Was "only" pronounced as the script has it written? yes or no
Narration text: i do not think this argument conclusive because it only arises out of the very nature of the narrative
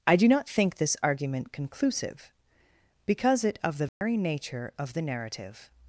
no